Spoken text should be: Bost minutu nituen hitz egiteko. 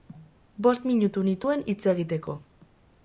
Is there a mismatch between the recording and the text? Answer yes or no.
no